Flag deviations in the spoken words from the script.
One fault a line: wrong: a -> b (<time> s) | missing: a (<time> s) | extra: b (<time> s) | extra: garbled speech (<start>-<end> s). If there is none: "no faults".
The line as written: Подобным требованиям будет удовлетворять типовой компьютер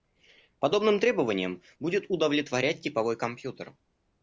no faults